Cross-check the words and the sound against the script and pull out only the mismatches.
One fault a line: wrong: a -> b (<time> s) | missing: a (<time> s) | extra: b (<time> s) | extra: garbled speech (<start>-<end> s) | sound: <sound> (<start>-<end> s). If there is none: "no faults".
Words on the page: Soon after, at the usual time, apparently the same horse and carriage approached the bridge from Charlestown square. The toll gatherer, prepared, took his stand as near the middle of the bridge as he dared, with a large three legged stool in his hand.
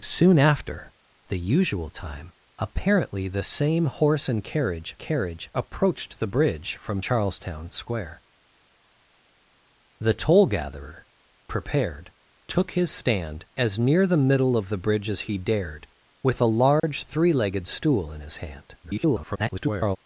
missing: at (0.9 s)
extra: carriage (5.0 s)
sound: dropout (16.8-16.8 s)
extra: garbled speech (18.8-20.0 s)